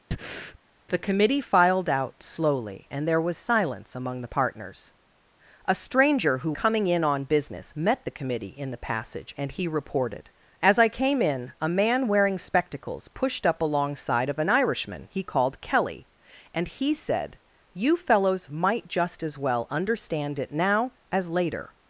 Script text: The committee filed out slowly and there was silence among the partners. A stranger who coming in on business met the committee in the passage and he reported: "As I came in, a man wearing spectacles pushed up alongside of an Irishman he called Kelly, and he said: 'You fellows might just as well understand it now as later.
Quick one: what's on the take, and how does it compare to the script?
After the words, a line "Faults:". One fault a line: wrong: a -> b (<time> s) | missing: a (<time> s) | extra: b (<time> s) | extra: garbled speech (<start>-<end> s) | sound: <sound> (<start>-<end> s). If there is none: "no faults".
The committee filed out slowly and there was silence among the partners. A stranger who coming in on business met the committee in the passage and he reported: "As I came in, a man wearing spectacles pushed up alongside of an Irishman he called Kelly, and he said: 'You fellows might just as well understand it now as later.
Faults:
sound: breath (0.1-0.6 s)